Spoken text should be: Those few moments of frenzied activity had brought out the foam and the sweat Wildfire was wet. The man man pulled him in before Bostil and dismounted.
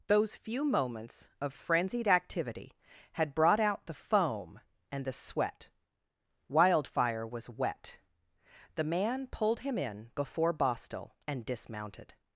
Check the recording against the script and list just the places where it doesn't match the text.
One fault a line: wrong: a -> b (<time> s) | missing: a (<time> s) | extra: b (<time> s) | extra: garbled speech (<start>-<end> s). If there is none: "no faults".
missing: man (9.3 s)